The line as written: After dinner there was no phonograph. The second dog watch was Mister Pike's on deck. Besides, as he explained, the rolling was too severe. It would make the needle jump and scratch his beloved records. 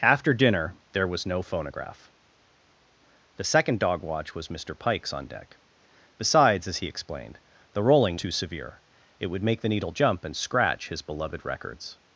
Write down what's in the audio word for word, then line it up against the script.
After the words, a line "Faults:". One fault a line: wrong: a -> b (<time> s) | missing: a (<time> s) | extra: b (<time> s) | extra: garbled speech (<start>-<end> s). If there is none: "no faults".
After dinner there was no phonograph. The second dog watch was Mister Pike's on deck. Besides, as he explained, the rolling too severe. It would make the needle jump and scratch his beloved records.
Faults:
missing: was (8.2 s)